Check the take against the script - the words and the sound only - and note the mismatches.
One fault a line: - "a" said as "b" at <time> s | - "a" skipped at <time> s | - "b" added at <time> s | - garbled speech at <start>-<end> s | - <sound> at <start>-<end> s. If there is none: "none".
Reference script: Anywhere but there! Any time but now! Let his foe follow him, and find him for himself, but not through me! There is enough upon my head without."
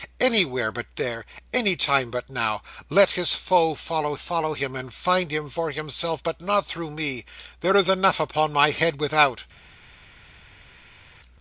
- "follow" added at 4.2 s